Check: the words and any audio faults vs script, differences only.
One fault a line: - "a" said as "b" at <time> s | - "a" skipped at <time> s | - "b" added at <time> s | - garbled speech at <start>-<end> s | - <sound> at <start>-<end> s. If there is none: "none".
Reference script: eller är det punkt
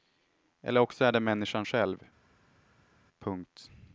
- "också" added at 0.8 s
- "människan själv" added at 1.2 s